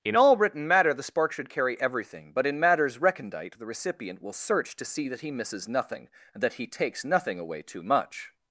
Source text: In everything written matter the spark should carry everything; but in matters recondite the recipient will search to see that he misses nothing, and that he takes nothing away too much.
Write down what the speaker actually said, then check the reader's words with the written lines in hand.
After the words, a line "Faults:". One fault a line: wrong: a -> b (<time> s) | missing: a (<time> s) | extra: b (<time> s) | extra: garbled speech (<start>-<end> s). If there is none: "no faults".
In all written matter the spark should carry everything; but in matters recondite the recipient will search to see that he misses nothing, and that he takes nothing away too much.
Faults:
wrong: everything -> all (0.1 s)